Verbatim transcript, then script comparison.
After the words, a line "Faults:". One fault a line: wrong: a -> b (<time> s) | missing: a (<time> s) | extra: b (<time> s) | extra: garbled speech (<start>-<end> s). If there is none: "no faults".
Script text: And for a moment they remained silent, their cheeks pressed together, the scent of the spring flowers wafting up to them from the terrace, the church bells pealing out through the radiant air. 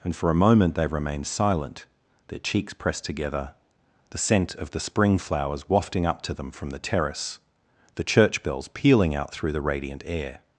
And for a moment they remained silent, their cheeks pressed together, the scent of the spring flowers wafting up to them from the terrace, the church bells pealing out through the radiant air.
Faults:
no faults